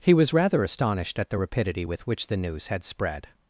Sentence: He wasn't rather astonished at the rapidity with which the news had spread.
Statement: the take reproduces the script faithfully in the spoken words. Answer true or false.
false